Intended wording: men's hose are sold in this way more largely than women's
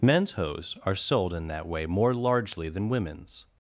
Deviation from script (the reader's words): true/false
true